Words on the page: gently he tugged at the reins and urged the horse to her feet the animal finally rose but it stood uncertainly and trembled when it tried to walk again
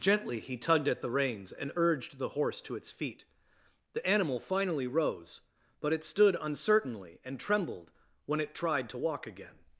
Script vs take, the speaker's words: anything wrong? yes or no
yes